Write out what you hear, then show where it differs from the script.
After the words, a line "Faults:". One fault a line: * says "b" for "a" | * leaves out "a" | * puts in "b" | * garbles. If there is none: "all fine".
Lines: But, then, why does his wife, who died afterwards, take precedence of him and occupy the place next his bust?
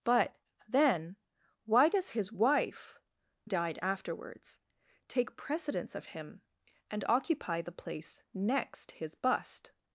But, then, why does his wife, died afterwards, take precedence of him and occupy the place next his bust?
Faults:
* leaves out "who"